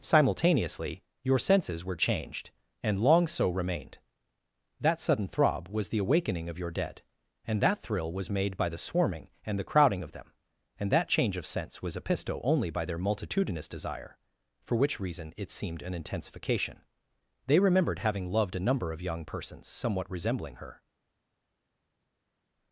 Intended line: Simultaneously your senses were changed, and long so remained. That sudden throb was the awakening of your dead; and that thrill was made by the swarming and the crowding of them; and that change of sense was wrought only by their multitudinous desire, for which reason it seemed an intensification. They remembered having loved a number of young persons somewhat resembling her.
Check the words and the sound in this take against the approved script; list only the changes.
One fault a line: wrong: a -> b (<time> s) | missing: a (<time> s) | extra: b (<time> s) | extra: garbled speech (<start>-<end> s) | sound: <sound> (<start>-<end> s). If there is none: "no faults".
wrong: wrought -> episto (11.9 s)